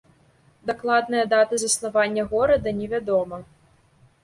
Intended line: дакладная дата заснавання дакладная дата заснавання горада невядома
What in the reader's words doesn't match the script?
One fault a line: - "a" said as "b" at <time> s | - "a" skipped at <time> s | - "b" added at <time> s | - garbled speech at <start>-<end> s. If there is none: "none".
- "дакладная дата заснавання" skipped at 2.2 s